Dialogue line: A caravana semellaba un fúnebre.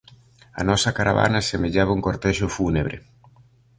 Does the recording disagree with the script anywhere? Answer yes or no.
yes